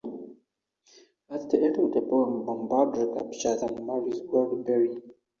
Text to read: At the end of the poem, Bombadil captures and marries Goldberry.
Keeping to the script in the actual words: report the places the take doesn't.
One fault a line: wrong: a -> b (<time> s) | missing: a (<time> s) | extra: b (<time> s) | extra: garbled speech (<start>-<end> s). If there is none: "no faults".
no faults